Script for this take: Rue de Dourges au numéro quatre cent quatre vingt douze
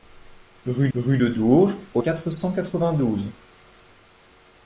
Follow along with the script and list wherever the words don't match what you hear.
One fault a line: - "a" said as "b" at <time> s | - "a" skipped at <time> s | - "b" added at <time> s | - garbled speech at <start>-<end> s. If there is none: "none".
- "rue" added at 0.9 s
- "numéro" skipped at 2.0 s